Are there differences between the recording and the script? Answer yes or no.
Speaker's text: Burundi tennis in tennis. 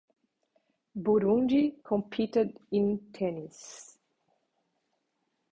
yes